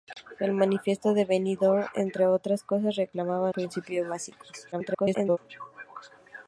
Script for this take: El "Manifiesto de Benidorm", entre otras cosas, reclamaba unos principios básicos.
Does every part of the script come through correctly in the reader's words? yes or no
no